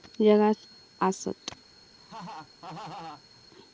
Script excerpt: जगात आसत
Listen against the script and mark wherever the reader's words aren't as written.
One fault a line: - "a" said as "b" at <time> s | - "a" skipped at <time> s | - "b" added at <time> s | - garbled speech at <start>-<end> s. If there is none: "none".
none